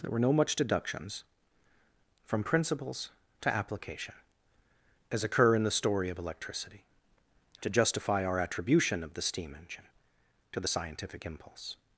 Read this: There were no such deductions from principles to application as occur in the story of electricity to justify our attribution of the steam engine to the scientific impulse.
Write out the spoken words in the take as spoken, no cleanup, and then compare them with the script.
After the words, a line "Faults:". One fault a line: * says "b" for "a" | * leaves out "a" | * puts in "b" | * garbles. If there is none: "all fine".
There were no much deductions from principles to application as occur in the story of electricity to justify our attribution of the steam engine to the scientific impulse.
Faults:
* says "much" for "such"